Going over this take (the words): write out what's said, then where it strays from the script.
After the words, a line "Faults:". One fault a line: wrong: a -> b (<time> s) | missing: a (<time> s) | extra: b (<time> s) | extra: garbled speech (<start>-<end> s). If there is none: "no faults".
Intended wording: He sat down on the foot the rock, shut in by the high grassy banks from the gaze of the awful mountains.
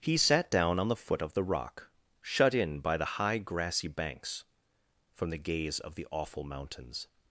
He sat down on the foot of the rock, shut in by the high grassy banks from the gaze of the awful mountains.
Faults:
extra: of (1.2 s)